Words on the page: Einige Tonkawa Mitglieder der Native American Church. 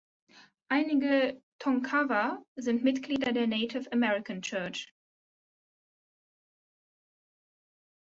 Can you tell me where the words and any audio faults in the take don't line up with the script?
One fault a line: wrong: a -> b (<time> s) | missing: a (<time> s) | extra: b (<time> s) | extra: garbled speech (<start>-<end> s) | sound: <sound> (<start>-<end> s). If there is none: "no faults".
extra: sind (2.5 s)